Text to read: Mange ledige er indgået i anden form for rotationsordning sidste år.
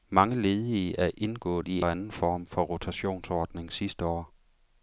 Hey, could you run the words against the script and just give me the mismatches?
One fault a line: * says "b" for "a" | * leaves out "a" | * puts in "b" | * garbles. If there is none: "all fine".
all fine